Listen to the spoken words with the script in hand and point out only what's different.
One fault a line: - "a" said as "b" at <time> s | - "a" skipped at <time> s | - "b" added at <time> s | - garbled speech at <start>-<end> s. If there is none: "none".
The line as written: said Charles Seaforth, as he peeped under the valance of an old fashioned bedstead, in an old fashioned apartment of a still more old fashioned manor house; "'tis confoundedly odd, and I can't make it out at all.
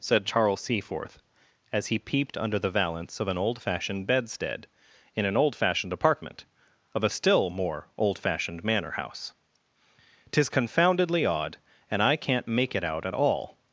none